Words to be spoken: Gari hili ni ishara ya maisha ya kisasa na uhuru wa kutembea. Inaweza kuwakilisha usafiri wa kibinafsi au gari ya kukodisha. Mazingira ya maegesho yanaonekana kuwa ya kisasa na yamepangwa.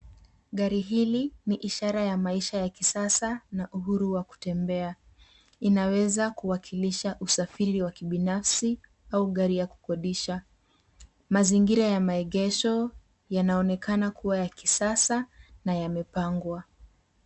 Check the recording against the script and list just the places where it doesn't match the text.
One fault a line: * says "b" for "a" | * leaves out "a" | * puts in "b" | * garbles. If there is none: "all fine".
all fine